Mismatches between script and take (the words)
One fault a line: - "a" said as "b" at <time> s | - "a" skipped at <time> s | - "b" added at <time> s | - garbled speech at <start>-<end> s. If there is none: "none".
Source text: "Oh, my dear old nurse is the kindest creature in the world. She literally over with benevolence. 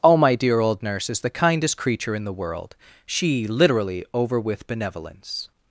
none